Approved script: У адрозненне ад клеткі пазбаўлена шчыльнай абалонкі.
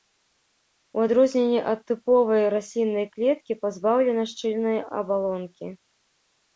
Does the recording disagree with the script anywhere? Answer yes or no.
yes